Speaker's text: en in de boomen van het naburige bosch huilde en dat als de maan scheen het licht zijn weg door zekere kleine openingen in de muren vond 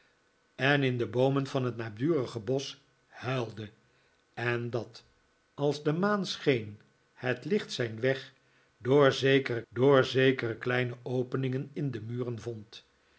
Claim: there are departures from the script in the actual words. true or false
true